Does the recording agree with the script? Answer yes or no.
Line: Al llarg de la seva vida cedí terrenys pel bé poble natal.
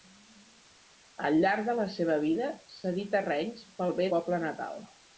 yes